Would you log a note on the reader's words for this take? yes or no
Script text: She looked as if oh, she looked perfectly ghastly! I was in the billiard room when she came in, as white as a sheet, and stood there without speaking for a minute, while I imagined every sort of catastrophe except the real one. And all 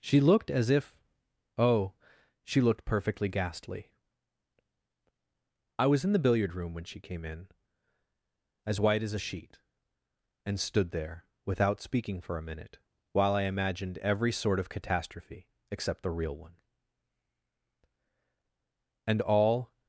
no